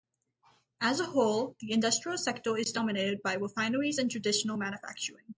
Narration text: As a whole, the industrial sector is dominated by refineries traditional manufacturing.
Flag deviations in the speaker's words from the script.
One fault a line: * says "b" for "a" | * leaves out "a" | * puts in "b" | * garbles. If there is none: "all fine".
* puts in "and"